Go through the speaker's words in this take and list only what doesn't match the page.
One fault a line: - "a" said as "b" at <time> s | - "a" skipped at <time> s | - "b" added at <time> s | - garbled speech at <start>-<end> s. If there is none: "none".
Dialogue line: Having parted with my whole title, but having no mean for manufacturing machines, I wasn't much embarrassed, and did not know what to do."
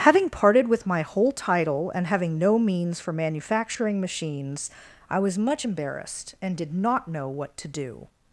- "but" said as "and" at 1.9 s
- "mean" said as "means" at 2.6 s
- "wasn't" said as "was" at 5.2 s